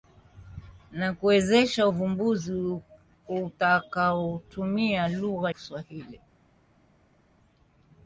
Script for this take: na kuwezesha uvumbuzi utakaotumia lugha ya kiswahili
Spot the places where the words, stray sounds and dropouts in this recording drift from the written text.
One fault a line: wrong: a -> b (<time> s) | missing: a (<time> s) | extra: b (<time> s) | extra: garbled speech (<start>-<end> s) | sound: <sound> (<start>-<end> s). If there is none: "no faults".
missing: ya (5.5 s)